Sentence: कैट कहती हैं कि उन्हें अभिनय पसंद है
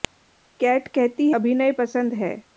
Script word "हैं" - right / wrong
wrong